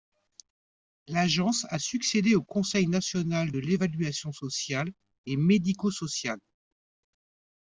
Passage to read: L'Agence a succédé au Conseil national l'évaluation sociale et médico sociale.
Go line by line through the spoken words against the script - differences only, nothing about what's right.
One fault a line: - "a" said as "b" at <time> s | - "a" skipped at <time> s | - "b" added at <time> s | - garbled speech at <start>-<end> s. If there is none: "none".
- "de" added at 3.5 s